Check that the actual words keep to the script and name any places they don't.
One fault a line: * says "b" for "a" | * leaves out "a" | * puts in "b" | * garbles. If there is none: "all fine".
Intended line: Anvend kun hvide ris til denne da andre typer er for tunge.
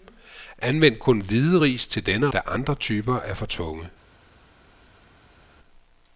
all fine